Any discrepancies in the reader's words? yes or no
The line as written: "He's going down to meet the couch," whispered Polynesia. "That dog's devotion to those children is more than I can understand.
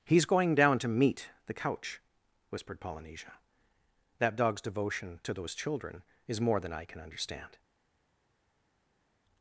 no